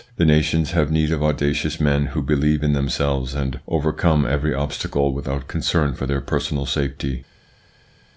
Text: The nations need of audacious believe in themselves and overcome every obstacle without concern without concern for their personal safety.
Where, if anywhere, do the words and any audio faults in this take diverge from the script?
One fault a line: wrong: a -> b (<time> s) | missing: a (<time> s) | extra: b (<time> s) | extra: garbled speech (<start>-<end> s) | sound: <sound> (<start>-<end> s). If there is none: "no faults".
extra: have (0.7 s)
extra: men who (1.8 s)
missing: without concern (5.9 s)